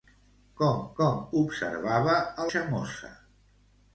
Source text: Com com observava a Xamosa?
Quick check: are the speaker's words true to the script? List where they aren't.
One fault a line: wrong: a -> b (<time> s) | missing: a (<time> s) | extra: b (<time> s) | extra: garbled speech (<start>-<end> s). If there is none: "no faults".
no faults